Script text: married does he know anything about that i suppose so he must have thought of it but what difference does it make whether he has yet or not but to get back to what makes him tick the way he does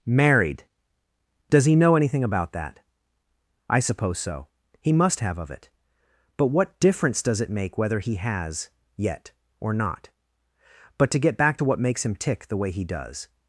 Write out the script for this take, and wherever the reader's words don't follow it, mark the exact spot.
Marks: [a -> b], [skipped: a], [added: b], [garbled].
married does he know anything about that i suppose so he must have [skipped: thought] of it but what difference does it make whether he has yet or not but to get back to what makes him tick the way he does